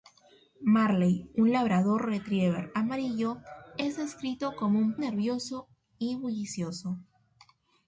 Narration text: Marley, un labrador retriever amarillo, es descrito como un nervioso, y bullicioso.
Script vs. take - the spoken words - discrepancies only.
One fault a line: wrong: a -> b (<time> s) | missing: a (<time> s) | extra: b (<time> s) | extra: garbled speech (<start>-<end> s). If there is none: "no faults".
no faults